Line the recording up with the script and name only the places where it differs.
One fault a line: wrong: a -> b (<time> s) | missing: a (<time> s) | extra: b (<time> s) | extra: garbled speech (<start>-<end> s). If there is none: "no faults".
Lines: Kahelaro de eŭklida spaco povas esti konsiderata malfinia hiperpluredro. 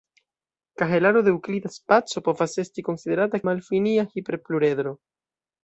no faults